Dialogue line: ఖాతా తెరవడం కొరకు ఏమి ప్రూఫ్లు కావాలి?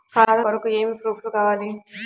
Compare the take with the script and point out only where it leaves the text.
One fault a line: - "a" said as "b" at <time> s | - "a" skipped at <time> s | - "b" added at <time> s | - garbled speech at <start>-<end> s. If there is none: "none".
- "తెరవడం" skipped at 0.4 s